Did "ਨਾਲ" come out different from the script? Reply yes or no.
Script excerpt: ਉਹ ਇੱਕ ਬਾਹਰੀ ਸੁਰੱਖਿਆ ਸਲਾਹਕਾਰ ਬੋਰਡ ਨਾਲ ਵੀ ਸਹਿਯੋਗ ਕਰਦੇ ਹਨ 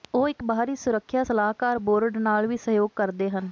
no